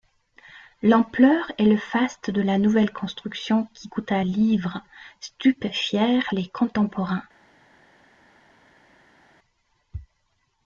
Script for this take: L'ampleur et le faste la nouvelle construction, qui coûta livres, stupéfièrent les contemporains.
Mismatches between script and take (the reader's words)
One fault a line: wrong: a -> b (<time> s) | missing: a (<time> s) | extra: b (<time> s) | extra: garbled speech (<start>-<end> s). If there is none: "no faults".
extra: de (2.3 s)